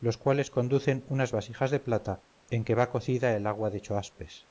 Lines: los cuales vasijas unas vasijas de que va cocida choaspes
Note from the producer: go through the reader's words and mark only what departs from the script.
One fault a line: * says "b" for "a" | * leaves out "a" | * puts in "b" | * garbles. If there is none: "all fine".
* says "conducen" for "vasijas"
* puts in "plata en"
* puts in "el agua de"